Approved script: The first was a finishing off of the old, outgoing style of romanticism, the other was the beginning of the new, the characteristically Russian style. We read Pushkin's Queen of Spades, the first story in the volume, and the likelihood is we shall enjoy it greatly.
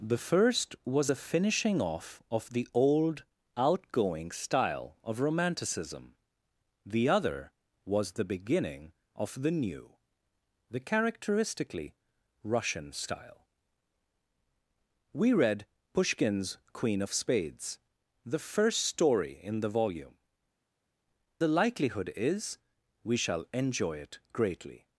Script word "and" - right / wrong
wrong